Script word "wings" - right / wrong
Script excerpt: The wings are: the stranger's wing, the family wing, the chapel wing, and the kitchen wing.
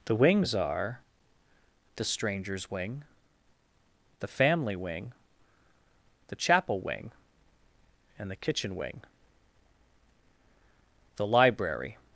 right